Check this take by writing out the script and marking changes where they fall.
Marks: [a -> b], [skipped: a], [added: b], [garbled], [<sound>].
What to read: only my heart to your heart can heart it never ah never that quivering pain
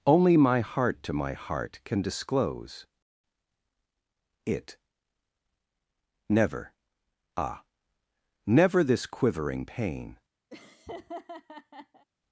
only my heart to [your -> my] heart can [heart -> disclose] it never ah never [that -> this] quivering pain [laugh]